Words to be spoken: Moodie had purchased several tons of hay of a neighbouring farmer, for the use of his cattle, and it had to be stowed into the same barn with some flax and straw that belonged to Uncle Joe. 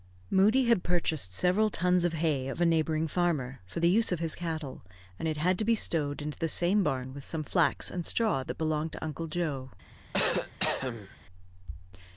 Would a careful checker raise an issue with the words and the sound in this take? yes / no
yes